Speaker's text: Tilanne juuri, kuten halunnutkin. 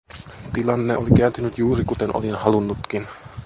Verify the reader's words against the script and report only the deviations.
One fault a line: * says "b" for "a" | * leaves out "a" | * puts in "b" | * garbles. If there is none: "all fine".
* puts in "oli kääntynyt"
* puts in "olin"